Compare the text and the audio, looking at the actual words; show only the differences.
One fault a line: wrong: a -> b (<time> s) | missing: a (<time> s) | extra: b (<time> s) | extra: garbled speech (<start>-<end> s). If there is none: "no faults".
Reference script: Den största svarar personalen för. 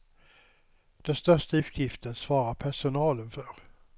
extra: utgiften (1.6 s)